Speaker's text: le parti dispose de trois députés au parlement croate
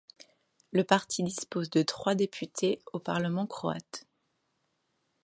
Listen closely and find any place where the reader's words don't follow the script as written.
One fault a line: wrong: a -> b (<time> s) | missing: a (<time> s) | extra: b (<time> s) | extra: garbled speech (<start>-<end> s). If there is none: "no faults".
no faults